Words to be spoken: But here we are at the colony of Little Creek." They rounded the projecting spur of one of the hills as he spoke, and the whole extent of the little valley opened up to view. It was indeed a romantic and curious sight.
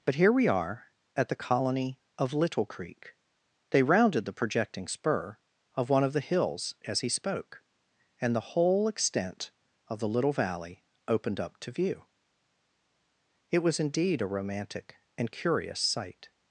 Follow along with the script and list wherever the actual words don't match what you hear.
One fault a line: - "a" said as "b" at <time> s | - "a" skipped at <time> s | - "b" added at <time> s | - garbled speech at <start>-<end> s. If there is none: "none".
none